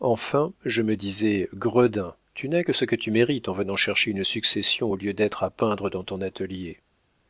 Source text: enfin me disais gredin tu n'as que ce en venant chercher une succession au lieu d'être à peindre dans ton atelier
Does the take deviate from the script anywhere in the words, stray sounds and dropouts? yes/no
yes